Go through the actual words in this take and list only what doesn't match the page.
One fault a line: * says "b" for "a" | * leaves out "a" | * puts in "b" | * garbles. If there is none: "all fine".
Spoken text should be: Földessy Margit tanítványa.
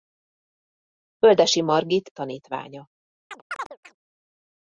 all fine